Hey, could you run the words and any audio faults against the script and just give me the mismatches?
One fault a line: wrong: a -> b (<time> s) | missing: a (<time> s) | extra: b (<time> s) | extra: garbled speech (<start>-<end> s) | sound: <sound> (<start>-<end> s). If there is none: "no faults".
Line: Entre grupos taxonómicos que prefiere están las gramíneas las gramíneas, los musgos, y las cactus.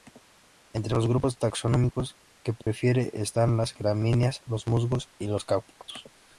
extra: los (0.9 s)
sound: dropout (2.6-2.7 s)
missing: las gramíneas (4.4 s)
wrong: las -> los (5.3 s)